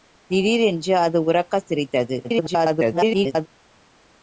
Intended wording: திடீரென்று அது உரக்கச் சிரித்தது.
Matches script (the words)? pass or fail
fail